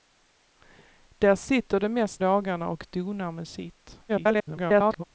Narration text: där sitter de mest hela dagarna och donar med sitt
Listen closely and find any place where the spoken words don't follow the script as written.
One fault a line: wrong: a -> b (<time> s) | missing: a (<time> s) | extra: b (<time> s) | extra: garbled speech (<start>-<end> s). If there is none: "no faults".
missing: hela (2.2 s)
extra: garbled speech (4.1-5.0 s)